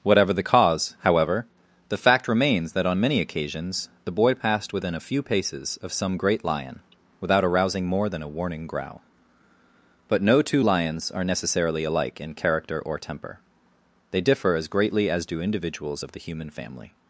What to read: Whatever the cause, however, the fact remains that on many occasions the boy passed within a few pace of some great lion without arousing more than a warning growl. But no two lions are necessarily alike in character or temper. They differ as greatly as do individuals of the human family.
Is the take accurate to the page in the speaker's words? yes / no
no